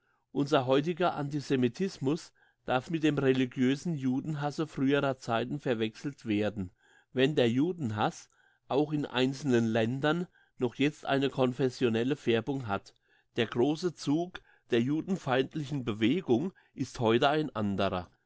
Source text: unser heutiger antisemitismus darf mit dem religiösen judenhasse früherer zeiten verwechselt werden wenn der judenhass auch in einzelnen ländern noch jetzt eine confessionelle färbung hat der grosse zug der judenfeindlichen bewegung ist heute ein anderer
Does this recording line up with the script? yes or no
yes